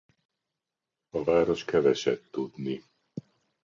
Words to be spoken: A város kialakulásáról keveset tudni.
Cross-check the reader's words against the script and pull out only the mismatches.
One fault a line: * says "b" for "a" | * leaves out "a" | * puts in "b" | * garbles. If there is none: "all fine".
* leaves out "kialakulásáról"